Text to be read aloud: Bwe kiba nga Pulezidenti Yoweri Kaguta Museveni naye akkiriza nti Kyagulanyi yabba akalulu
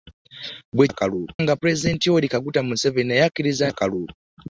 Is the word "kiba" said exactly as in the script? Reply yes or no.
no